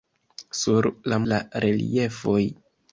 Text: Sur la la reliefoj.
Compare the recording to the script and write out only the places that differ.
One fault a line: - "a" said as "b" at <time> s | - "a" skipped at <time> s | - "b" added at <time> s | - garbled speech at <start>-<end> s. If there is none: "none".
none